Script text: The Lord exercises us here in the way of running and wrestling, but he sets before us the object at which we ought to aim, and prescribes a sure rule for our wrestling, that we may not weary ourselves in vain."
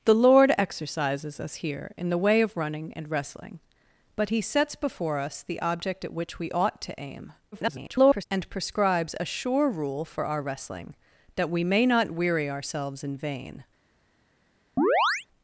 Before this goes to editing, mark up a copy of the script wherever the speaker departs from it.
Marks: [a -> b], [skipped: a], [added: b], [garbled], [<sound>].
The Lord exercises us here in the way of running and wrestling, but he sets before us the object at which we ought to aim, [garbled] and prescribes a sure rule for our wrestling, that we may not weary ourselves in vain." [chirp]